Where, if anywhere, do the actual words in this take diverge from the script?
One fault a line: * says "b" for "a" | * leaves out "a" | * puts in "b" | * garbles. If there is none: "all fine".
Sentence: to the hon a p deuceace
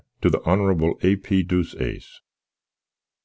all fine